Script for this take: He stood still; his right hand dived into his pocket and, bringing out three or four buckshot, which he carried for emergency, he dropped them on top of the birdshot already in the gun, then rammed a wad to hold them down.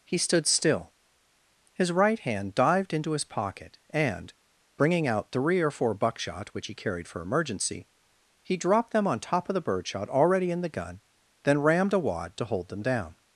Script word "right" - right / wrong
right